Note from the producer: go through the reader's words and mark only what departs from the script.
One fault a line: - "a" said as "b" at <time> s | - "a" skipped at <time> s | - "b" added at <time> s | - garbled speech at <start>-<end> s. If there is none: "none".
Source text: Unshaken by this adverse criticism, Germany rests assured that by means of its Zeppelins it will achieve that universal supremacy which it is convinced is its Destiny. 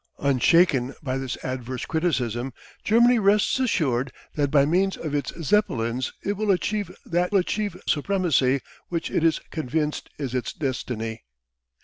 - "universal" said as "achieve" at 7.3 s